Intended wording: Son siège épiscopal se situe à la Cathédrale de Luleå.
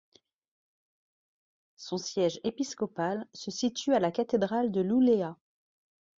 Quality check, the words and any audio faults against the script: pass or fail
pass